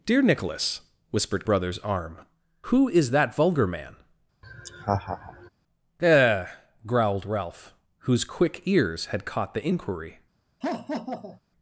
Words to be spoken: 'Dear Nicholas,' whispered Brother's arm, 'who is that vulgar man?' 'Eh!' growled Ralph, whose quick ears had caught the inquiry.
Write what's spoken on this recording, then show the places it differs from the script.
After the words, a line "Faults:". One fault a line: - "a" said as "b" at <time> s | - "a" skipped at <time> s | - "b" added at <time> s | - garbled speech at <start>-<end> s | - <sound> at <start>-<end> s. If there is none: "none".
'Dear Nicholas,' whispered Brother's arm, 'who is that vulgar man?' 'Eh!' growled Ralph, whose quick ears had caught the inquiry.
Faults:
- laugh at 4.4-5.5 s
- laugh at 10.6-11.4 s